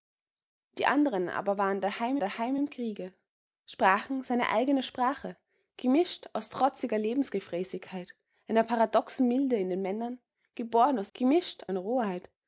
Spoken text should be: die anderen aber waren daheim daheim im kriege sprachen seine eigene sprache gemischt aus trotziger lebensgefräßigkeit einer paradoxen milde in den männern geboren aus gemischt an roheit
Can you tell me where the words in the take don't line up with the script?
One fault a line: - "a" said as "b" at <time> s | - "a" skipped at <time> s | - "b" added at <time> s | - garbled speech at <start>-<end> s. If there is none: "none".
none